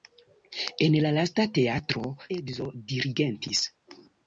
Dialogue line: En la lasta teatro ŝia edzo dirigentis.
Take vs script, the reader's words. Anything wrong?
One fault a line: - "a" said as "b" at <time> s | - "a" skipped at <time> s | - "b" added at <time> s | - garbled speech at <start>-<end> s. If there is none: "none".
- "ŝia" skipped at 2.0 s